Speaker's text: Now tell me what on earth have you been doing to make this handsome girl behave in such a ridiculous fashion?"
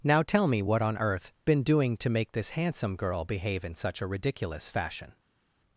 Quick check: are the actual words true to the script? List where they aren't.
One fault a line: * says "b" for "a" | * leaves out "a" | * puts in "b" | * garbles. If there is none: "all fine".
* leaves out "have you"